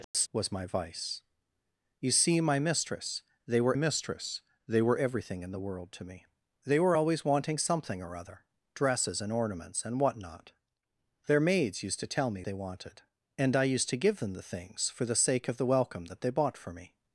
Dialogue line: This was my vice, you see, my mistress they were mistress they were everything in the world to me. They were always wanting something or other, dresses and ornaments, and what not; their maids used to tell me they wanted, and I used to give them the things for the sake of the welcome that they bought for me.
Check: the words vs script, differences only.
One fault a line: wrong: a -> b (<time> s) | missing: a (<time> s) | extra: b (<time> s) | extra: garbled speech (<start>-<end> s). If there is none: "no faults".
no faults